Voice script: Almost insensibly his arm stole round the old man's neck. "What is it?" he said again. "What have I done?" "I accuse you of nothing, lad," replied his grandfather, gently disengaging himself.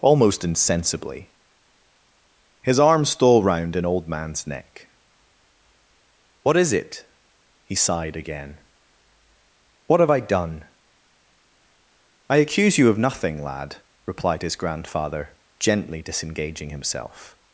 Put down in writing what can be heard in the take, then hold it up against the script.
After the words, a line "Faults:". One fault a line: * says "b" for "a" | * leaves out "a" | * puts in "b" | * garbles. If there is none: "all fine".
Almost insensibly his arm stole round an old man's neck. "What is it?" he sighed again. "What have I done?" "I accuse you of nothing, lad," replied his grandfather, gently disengaging himself.
Faults:
* says "an" for "the"
* says "sighed" for "said"